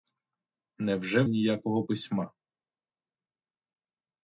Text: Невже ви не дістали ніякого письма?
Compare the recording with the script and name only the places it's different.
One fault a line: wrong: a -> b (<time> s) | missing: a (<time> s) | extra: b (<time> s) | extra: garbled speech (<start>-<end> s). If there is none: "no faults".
missing: ви не дістали (1.2 s)